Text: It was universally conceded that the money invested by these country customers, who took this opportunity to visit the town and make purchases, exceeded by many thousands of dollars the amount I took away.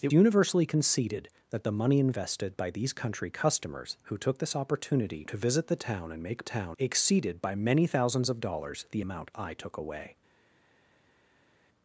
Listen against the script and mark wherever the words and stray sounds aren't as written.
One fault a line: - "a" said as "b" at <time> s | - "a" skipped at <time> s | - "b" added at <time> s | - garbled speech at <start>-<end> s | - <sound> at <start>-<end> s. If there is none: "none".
- "was" skipped at 0.1 s
- "purchases" said as "town" at 6.4 s